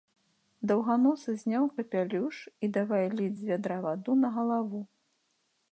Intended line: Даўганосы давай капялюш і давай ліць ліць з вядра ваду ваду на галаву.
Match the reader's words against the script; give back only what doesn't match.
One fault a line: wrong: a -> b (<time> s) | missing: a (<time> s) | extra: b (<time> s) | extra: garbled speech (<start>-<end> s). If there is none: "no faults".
wrong: давай -> зняў (1.4 s)
missing: ліць (3.4 s)
missing: ваду (4.1 s)